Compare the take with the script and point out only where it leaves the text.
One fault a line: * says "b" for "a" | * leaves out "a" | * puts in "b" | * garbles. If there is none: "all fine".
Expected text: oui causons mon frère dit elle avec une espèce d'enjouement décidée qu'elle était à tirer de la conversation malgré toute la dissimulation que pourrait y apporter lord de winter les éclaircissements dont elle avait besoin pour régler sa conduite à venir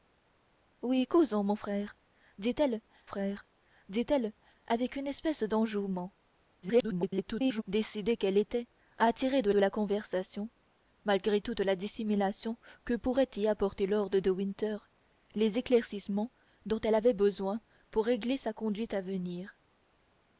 * puts in "frère dit elle"
* garbles
* puts in "de"